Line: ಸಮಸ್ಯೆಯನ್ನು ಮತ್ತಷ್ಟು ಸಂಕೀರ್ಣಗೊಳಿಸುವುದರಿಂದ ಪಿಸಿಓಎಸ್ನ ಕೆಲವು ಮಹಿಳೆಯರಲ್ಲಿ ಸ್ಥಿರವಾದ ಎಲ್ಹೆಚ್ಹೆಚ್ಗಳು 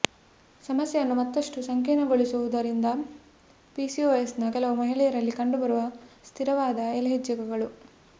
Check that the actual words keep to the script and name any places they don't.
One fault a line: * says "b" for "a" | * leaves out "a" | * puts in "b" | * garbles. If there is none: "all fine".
* puts in "ಕಂಡುಬರುವ"